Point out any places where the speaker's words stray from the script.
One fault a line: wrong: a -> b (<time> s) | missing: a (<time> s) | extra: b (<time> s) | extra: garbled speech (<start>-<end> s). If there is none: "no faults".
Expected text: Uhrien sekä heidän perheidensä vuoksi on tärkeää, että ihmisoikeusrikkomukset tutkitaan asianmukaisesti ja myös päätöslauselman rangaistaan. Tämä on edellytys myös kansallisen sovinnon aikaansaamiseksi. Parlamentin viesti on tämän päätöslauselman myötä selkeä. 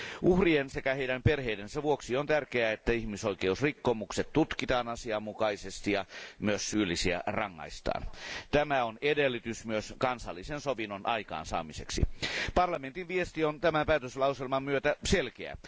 wrong: päätöslauselman -> syyllisiä (6.7 s)